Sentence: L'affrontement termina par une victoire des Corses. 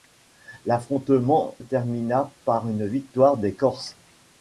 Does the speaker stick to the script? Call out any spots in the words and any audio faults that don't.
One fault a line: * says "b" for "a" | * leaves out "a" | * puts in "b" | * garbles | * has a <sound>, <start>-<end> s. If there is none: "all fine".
all fine